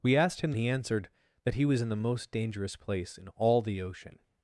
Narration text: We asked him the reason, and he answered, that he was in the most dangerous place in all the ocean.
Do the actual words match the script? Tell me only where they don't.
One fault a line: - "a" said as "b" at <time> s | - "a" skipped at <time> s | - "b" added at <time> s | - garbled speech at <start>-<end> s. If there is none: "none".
- "the reason and" skipped at 0.5 s